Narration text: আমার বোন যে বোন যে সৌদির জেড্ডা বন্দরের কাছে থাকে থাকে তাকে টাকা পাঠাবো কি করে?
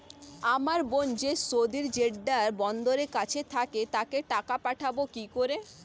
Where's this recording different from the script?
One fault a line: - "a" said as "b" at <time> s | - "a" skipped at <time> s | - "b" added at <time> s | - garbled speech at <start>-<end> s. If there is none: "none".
- "বোন যে" skipped at 1.3 s
- "থাকে" skipped at 3.8 s